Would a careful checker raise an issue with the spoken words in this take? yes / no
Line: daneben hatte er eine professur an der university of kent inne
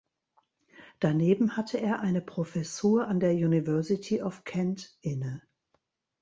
no